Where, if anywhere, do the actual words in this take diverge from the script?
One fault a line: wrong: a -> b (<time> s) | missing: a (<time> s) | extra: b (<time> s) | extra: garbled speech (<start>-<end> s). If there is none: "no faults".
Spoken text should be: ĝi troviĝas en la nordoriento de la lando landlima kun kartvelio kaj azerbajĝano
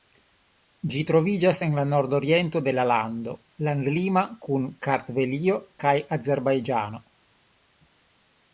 no faults